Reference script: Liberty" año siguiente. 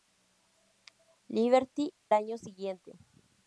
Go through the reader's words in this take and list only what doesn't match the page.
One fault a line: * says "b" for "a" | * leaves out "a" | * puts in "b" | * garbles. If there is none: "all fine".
all fine